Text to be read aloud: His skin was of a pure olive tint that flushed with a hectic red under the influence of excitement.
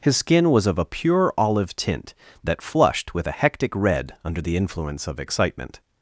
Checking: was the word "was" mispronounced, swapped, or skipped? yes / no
no